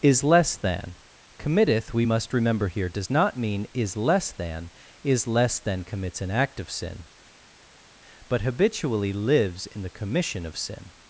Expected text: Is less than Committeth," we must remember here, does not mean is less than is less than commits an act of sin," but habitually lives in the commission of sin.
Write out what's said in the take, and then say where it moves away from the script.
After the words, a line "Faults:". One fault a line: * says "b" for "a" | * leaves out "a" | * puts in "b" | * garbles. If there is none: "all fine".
Is less than Committeth," we must remember here, does not mean is less than is less than commits an act of sin," but habitually lives in the commission of sin.
Faults:
all fine